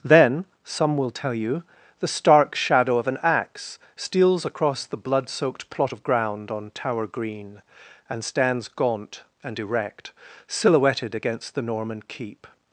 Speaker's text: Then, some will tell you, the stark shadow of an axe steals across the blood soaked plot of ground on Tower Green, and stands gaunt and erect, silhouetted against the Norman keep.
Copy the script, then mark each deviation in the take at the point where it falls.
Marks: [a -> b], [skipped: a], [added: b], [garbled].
Then, some will tell you, the stark shadow of an axe steals across the blood soaked plot of ground on Tower Green, and stands gaunt and erect, silhouetted against the Norman keep.